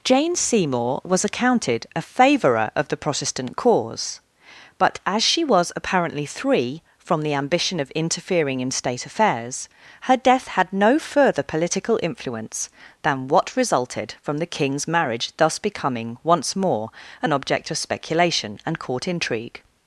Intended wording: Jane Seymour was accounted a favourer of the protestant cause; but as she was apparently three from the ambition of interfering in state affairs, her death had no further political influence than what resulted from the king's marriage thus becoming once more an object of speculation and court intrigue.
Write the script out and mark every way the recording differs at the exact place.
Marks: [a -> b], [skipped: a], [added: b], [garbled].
Jane Seymour was accounted a favourer of the protestant cause; but as she was apparently three from the ambition of interfering in state affairs, her death had no further political influence than what resulted from the king's marriage thus becoming once more an object of speculation and court intrigue.